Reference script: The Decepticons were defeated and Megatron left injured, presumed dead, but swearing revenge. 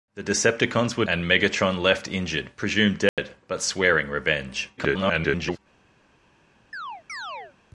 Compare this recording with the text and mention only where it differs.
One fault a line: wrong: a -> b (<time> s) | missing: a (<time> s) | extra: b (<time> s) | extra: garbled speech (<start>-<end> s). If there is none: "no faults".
missing: defeated (1.1 s)
extra: garbled speech (4.8-5.6 s)